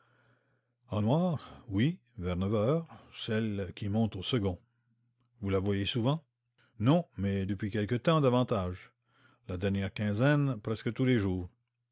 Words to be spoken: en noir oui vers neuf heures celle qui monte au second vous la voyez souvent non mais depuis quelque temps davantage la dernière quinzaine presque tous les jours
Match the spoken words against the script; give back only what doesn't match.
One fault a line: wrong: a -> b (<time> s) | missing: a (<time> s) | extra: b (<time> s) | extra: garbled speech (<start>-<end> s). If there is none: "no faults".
no faults